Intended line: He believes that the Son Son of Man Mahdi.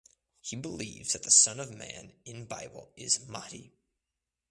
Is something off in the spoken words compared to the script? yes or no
yes